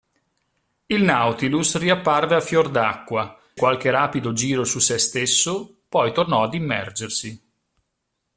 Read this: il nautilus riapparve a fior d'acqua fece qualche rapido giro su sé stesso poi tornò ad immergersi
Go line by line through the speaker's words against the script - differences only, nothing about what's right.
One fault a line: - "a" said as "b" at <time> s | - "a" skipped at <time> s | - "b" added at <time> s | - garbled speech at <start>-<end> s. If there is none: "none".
- "fece" skipped at 3.4 s